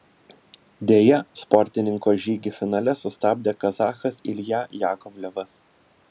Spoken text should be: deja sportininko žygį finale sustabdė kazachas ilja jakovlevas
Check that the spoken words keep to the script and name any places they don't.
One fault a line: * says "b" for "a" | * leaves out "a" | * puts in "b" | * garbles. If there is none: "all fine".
all fine